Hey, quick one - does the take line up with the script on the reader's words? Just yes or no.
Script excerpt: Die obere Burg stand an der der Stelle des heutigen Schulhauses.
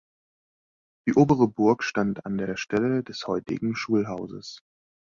yes